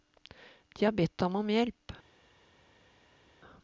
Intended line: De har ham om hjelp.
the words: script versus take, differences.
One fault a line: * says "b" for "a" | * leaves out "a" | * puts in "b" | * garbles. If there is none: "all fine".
* puts in "bedt"